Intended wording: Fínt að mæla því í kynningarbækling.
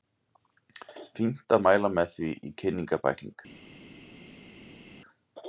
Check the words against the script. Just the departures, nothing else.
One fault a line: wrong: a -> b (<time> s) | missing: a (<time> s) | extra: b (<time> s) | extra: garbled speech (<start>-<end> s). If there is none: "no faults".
extra: með (2.0 s)